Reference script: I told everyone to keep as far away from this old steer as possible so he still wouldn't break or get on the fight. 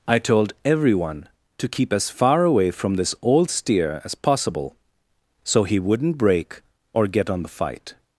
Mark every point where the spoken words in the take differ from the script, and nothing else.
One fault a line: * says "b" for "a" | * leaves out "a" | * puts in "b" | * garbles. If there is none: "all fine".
* leaves out "still"